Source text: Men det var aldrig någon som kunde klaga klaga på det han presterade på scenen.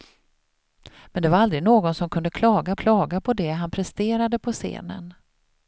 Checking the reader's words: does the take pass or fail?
pass